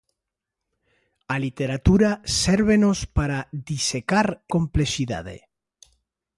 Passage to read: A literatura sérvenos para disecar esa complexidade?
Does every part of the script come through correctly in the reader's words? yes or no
no